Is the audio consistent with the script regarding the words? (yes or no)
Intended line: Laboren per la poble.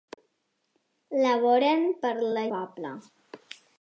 yes